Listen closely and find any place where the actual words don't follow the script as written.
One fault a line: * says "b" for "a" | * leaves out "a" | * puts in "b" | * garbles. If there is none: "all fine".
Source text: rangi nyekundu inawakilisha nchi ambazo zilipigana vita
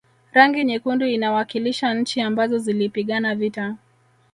all fine